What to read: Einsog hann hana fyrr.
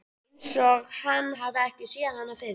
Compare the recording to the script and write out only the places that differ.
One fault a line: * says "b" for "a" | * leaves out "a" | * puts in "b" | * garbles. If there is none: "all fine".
* puts in "hafi ekki séð"